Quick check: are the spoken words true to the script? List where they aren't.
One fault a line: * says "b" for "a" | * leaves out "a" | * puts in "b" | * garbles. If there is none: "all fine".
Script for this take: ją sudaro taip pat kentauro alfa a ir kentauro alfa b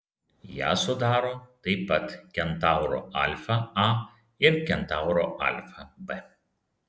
all fine